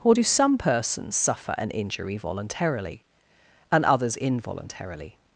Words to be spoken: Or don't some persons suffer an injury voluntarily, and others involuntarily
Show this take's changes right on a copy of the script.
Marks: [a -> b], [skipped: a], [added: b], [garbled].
Or [don't -> do] some persons suffer an injury voluntarily, and others involuntarily